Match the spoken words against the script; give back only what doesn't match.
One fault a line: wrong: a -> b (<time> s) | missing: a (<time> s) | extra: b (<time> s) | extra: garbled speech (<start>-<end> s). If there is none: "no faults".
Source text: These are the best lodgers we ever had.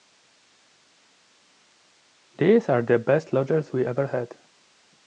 no faults